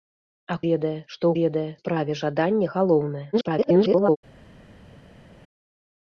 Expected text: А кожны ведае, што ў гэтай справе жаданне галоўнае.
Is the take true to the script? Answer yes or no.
no